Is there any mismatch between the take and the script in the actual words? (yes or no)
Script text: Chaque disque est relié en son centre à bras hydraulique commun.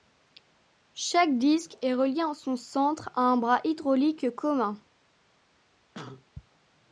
yes